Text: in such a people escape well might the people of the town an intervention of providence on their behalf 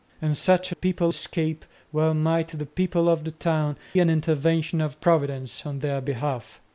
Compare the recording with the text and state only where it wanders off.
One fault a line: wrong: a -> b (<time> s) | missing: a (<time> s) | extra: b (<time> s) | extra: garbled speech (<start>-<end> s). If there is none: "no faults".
no faults